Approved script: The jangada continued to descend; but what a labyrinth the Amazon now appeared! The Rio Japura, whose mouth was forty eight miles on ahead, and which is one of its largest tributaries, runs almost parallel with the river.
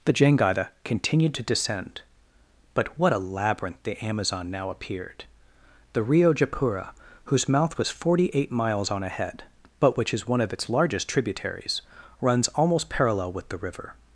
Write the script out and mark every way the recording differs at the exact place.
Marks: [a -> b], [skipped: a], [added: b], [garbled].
The jangada continued to descend; but what a labyrinth the Amazon now appeared! The Rio Japura, whose mouth was forty eight miles on ahead, [and -> but] which is one of its largest tributaries, runs almost parallel with the river.